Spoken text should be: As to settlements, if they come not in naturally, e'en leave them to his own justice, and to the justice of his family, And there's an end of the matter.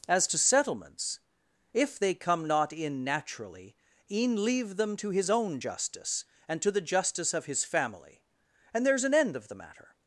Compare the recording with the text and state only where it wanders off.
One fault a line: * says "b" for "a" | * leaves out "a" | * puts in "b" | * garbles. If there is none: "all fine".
all fine